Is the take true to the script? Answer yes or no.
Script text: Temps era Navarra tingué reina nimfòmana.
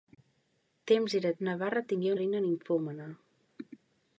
yes